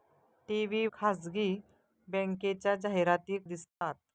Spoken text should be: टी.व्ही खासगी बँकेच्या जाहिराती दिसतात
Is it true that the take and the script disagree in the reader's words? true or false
false